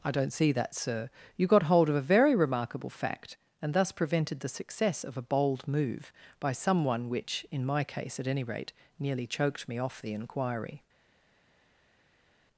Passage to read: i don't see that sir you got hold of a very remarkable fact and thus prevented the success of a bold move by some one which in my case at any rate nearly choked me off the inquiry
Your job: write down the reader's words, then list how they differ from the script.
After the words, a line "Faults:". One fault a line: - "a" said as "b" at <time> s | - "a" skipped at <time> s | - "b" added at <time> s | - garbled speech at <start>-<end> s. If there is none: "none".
i don't see that sir you got hold of a very remarkable fact and thus prevented the success of a bold move by some one which in my case at any rate nearly choked me off the inquiry
Faults:
none